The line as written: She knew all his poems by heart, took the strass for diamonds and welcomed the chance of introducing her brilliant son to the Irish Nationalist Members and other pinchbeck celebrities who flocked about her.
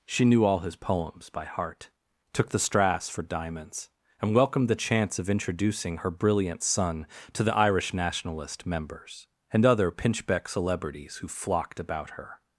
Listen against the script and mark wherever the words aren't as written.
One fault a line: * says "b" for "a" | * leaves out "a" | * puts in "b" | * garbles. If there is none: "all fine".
all fine